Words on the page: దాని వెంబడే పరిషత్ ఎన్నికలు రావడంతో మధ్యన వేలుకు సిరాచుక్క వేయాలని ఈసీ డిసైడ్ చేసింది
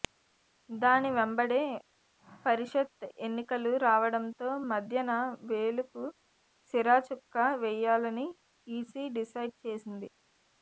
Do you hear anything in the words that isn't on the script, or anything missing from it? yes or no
no